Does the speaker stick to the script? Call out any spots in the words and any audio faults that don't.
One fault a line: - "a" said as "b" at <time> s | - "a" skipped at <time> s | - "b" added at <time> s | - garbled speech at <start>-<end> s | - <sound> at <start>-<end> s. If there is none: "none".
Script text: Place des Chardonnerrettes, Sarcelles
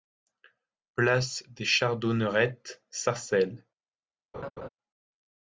- laugh at 4.3-4.7 s